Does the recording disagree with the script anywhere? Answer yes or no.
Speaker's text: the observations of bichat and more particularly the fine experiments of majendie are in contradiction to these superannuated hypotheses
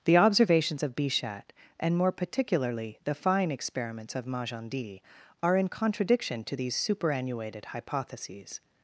no